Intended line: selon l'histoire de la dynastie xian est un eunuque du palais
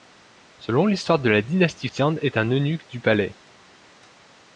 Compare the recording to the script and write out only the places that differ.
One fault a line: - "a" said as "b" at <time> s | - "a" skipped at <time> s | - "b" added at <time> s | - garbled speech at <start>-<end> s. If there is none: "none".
none